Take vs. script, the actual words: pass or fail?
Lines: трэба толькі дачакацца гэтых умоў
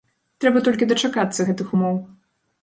pass